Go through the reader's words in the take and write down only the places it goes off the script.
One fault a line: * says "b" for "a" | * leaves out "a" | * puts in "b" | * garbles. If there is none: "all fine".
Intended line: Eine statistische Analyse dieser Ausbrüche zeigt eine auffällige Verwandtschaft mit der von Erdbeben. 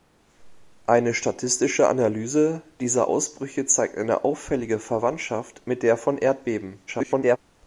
* garbles